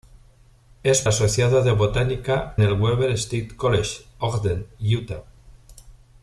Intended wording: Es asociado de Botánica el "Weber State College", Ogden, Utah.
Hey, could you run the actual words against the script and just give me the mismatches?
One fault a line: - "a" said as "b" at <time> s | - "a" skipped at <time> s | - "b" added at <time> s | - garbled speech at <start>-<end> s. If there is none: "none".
none